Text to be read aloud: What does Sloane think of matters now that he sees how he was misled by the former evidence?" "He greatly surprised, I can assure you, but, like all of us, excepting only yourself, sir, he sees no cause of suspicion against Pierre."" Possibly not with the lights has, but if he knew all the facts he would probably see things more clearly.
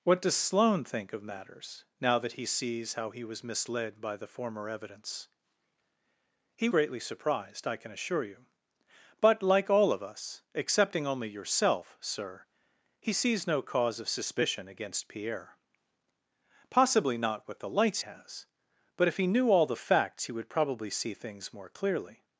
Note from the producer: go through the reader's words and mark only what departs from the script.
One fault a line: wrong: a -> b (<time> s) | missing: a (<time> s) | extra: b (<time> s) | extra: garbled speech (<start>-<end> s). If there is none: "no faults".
no faults